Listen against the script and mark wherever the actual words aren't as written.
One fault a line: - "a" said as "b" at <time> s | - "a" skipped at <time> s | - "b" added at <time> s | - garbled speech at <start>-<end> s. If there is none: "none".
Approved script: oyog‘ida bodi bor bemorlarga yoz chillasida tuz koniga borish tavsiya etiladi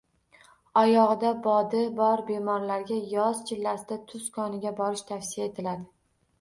none